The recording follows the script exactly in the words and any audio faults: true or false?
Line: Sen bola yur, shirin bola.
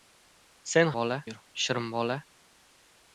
true